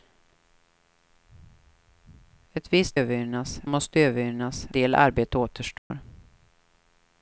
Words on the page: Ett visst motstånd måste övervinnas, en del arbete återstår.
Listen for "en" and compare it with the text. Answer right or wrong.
wrong